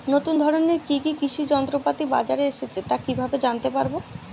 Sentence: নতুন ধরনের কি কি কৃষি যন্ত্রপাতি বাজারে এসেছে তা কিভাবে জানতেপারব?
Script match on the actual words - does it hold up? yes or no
yes